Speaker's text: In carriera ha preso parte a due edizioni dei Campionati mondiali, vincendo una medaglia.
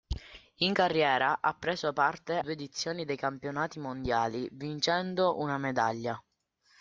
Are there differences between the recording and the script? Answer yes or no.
yes